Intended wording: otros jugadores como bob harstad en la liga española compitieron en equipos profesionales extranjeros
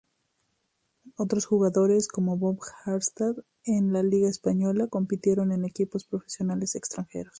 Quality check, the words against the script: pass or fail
pass